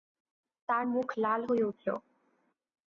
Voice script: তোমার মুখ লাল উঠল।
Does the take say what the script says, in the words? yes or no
no